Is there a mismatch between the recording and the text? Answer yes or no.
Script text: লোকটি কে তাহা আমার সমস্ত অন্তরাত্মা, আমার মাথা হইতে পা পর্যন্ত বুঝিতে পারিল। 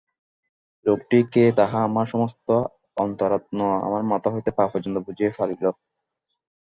no